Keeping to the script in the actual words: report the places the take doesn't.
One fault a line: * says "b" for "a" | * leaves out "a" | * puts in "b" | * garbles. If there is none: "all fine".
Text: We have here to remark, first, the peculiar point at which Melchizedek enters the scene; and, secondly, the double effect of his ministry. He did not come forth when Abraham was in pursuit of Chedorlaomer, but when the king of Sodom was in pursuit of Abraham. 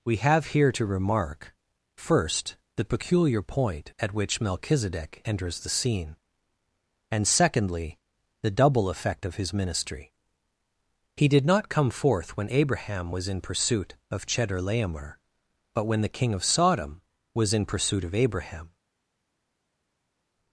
all fine